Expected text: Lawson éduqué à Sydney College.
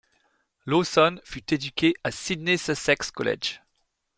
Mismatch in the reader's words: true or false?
true